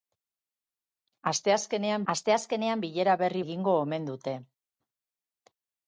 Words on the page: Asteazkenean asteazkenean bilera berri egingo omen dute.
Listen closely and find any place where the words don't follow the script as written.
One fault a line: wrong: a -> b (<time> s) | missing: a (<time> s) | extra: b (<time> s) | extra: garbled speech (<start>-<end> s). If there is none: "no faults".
no faults